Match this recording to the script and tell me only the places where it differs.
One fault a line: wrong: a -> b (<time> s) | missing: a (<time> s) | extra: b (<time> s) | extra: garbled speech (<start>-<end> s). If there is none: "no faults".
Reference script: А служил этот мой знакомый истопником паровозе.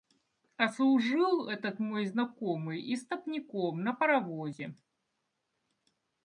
extra: на (3.8 s)